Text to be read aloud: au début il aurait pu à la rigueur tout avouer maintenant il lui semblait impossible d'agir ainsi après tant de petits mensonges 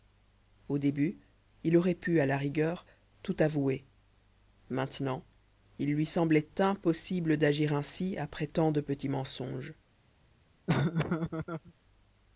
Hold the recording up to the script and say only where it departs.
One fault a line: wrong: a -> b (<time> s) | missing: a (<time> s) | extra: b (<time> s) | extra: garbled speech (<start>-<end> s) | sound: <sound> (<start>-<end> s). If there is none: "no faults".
sound: laugh (10.7-11.7 s)